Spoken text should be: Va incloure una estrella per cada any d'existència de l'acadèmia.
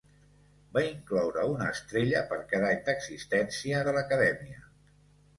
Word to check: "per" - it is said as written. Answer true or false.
true